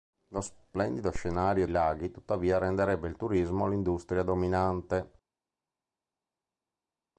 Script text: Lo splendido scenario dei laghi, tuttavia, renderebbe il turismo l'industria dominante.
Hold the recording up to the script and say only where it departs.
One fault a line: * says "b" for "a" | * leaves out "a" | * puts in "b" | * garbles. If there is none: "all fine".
* leaves out "dei"